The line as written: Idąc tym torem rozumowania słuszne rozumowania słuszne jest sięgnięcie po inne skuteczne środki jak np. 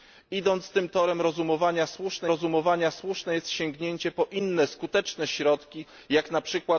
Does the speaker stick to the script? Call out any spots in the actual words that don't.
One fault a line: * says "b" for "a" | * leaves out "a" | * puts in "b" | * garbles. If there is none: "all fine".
all fine